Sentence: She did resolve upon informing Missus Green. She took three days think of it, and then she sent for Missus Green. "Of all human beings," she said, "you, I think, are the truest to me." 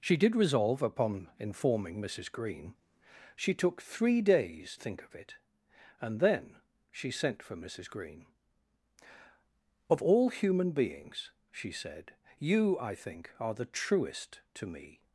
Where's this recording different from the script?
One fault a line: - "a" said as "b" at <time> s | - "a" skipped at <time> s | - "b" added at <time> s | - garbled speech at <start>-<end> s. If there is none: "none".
none